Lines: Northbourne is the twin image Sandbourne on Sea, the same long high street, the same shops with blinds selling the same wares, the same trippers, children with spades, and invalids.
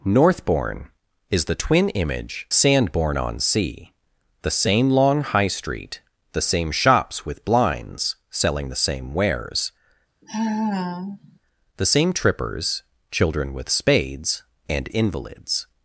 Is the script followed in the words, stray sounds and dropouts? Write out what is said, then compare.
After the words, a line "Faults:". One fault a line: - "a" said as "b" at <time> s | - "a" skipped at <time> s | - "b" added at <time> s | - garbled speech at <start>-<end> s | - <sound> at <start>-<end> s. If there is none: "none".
Northbourne is the twin image Sandbourne on Sea, the same long high street, the same shops with blinds selling the same wares, the same trippers, children with spades, and invalids.
Faults:
- sigh at 10.2-11.4 s